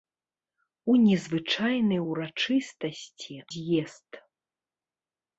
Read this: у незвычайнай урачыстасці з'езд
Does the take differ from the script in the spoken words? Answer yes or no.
no